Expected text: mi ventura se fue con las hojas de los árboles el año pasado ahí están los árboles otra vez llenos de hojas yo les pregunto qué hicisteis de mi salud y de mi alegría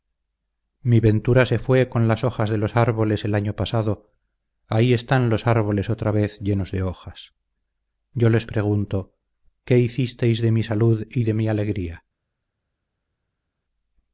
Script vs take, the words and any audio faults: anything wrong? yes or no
no